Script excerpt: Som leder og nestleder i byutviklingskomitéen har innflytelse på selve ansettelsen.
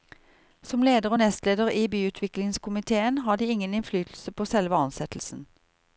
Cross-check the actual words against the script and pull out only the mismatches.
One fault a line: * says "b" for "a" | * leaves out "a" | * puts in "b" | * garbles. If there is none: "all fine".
* puts in "de ingen"